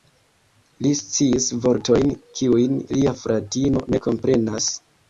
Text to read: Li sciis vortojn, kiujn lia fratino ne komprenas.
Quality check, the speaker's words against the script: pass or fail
pass